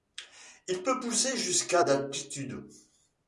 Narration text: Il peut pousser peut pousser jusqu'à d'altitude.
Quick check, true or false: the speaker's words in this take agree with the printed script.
false